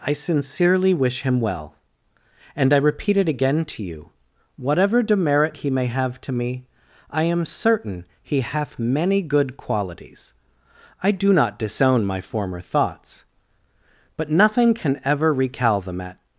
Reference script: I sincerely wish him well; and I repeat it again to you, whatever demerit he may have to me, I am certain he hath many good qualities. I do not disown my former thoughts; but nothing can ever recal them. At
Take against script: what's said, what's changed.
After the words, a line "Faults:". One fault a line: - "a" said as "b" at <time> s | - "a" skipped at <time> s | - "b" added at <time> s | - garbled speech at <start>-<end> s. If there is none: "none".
I sincerely wish him well; and I repeat it again to you, whatever demerit he may have to me, I am certain he hath many good qualities. I do not disown my former thoughts; but nothing can ever recal them. At
Faults:
none